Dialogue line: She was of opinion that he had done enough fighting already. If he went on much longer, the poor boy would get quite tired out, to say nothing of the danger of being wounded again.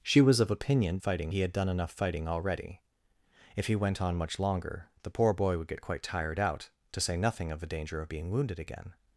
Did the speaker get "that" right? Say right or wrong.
wrong